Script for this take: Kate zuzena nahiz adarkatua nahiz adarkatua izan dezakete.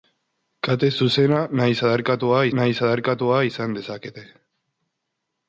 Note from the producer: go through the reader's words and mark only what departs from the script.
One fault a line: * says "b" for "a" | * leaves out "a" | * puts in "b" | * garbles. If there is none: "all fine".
all fine